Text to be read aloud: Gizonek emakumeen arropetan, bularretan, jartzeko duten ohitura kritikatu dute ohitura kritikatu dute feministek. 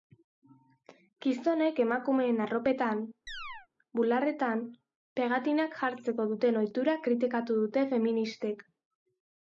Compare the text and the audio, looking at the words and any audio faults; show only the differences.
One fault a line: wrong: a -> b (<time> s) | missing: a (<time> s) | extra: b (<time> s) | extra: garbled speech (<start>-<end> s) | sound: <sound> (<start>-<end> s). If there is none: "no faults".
sound: chirp (3.3-3.7 s)
extra: pegatinak (5.2 s)
missing: ohitura kritikatu dute (7.8 s)